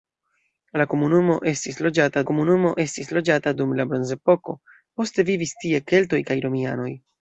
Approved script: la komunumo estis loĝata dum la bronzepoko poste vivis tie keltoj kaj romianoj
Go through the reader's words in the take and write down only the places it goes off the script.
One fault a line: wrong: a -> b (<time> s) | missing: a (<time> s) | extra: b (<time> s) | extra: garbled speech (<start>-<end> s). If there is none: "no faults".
extra: komunumo estis loĝata (2.3 s)